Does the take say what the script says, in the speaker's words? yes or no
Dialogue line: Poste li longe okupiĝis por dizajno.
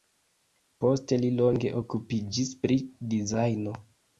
no